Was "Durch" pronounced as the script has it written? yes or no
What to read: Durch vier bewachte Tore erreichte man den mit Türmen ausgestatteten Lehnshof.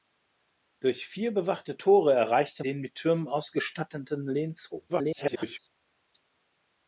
yes